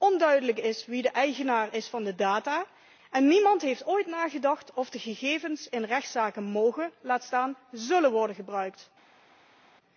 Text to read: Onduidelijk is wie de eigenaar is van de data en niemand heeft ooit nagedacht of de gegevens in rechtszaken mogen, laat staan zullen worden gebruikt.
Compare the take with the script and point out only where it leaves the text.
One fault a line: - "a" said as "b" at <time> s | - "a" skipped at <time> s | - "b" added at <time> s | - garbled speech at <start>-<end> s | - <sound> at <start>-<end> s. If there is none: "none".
none